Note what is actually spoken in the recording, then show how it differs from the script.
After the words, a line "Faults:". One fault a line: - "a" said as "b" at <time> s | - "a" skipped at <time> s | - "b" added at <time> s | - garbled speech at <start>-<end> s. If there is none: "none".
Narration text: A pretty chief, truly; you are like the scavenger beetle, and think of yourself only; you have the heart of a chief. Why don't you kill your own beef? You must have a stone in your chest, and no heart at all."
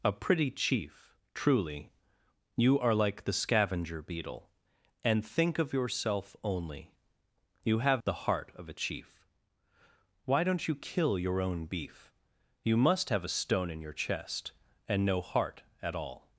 A pretty chief, truly; you are like the scavenger beetle, and think of yourself only; you have the heart of a chief. Why don't you kill your own beef? You must have a stone in your chest, and no heart at all."
Faults:
none